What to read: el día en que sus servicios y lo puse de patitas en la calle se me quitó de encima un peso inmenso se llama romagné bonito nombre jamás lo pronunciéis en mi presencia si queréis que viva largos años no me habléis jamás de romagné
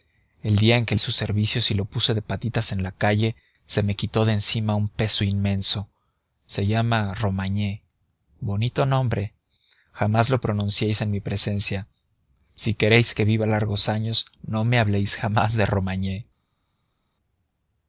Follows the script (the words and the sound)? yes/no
yes